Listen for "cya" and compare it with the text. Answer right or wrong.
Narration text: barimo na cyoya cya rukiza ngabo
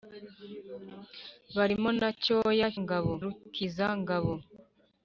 wrong